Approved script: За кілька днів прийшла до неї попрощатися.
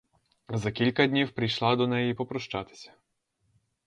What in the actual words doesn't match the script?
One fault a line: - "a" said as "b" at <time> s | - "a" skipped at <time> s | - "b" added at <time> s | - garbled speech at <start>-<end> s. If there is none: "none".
none